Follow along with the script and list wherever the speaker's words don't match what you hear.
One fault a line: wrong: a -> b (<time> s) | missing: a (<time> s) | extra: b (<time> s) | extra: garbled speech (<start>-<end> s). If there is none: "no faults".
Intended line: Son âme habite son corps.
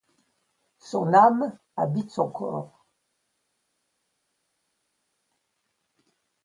no faults